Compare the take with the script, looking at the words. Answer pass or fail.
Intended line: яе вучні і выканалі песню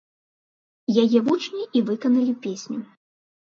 pass